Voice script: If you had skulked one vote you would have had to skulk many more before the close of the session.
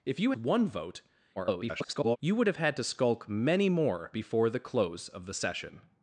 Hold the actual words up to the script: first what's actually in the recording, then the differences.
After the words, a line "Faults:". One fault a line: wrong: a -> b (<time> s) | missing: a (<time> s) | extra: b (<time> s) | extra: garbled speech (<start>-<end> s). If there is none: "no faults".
If you one vote [garbled] you would have had to skulk many more before the close of the session.
Faults:
missing: had skulked (0.3 s)
extra: garbled speech (1.4-2.2 s)